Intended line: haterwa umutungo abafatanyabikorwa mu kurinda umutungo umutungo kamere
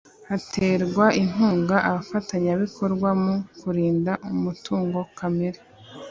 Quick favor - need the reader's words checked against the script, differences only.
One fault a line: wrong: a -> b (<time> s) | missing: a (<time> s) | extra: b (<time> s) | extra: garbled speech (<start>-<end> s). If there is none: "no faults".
wrong: umutungo -> inkunga (1.2 s)
missing: umutungo (5.0 s)